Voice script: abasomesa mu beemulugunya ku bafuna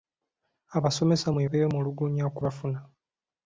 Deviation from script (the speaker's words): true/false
false